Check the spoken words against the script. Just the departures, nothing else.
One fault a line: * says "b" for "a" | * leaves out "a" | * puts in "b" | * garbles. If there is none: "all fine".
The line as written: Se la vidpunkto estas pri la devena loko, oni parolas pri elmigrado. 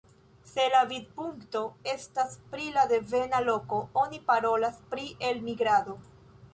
all fine